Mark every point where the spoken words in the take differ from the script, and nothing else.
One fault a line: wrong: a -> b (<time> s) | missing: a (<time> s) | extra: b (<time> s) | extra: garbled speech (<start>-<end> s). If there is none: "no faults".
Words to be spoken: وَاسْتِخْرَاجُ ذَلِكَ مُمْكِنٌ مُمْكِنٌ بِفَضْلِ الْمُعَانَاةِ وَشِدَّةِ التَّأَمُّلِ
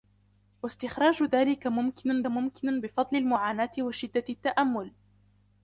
no faults